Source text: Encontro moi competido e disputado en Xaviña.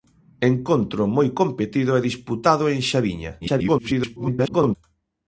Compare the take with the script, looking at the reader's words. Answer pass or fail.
fail